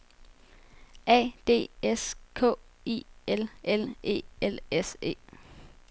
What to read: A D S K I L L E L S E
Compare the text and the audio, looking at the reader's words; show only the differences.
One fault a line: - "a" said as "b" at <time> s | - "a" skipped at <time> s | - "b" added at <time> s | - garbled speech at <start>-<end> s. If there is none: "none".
none